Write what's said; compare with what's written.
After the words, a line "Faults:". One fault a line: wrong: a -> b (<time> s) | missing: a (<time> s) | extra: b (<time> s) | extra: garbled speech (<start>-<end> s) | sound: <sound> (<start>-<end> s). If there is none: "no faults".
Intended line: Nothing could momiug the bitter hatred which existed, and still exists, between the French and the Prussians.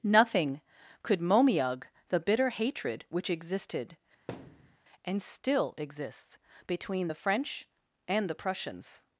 Nothing could momiug the bitter hatred which existed, and still exists, between the French and the Prussians.
Faults:
sound: thud (4.3-4.8 s)